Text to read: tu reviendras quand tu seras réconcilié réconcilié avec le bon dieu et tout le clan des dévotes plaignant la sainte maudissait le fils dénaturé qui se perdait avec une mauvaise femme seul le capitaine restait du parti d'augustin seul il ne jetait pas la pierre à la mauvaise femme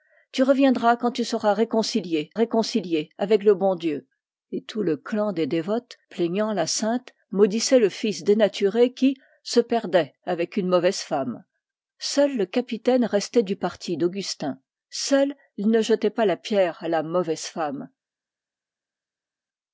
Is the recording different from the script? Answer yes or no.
no